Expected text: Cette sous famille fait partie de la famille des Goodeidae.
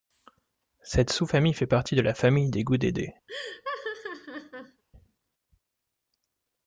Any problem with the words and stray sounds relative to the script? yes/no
yes